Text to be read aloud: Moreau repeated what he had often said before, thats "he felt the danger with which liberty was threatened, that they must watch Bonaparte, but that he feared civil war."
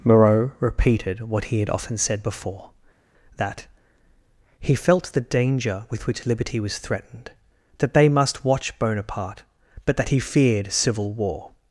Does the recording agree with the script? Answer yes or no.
no